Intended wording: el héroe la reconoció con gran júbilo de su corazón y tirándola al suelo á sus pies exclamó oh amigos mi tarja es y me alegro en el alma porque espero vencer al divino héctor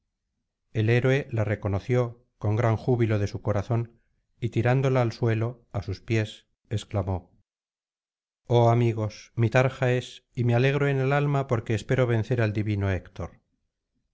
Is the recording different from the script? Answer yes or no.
no